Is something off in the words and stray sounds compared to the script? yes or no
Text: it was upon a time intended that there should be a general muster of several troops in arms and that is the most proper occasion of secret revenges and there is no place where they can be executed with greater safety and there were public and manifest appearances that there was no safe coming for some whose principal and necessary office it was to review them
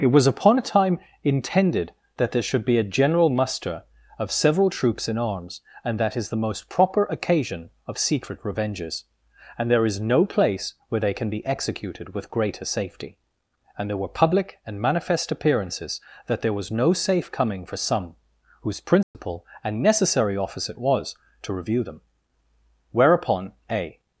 yes